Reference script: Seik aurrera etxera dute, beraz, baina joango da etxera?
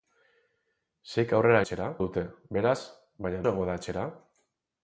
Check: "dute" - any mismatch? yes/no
no